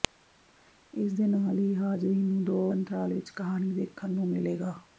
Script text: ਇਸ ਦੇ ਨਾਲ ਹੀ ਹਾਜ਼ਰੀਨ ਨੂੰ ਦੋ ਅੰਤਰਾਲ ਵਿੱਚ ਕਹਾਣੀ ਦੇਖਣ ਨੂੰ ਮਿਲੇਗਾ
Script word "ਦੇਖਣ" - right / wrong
right